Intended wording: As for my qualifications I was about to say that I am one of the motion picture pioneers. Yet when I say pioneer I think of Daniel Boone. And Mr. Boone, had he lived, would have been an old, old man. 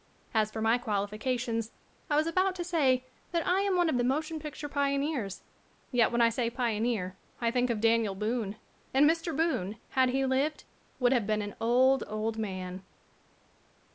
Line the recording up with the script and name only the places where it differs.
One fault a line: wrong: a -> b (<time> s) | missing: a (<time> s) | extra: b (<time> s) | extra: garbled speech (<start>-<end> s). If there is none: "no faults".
no faults